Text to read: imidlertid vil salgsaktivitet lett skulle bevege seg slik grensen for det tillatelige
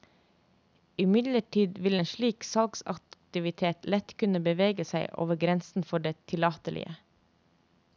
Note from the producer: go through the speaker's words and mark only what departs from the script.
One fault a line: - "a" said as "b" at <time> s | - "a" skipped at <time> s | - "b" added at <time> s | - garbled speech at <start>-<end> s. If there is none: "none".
- "en slik" added at 1.9 s
- "skulle" said as "kunne" at 4.2 s
- "slik" said as "over" at 5.2 s